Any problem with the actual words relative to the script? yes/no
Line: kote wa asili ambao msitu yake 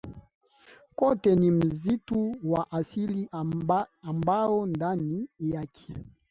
yes